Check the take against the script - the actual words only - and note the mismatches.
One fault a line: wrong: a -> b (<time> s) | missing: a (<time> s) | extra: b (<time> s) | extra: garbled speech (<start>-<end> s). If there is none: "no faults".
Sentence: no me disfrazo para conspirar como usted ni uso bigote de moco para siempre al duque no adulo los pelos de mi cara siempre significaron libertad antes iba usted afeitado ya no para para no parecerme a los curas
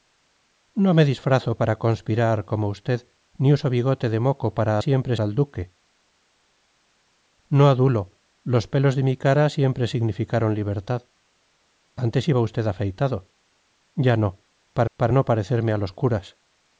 no faults